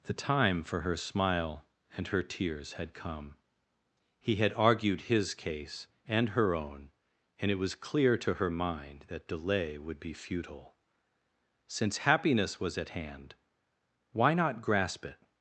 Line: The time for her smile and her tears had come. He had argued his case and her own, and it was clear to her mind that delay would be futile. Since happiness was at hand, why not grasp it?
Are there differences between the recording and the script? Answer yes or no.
no